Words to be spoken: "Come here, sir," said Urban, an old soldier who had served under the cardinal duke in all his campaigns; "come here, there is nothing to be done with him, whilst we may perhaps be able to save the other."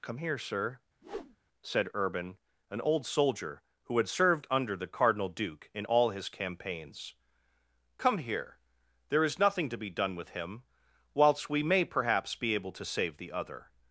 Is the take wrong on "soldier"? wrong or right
right